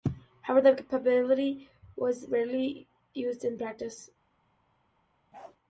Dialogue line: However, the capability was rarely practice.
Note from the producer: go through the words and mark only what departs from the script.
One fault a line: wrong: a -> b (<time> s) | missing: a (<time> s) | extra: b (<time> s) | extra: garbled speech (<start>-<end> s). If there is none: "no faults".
extra: used in (3.1 s)